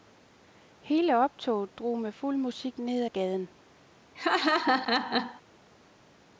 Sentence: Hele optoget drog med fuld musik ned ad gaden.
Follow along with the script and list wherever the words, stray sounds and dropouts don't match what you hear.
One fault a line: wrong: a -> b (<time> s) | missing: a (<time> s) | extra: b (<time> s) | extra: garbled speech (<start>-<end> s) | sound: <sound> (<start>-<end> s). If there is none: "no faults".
sound: laugh (4.1-5.4 s)